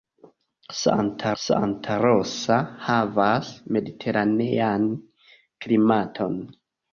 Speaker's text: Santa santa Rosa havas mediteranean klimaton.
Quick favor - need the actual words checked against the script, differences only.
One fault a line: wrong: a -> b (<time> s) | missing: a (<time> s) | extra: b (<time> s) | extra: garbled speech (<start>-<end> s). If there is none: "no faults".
no faults